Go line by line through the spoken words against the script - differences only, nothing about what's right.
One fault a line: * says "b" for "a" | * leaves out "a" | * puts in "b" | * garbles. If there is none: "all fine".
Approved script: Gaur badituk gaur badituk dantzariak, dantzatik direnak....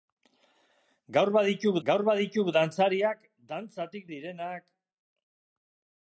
all fine